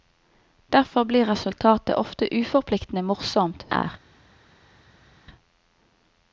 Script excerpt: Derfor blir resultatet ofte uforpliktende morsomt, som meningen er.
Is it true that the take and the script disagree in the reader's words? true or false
true